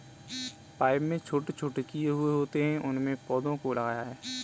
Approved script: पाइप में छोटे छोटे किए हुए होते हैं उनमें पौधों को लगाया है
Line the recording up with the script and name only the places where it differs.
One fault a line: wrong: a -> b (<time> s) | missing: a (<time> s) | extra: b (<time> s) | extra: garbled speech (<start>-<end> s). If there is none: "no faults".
no faults